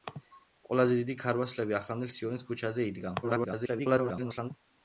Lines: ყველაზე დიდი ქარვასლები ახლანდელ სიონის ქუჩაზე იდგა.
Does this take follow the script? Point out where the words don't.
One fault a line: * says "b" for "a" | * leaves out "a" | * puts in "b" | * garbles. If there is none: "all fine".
* garbles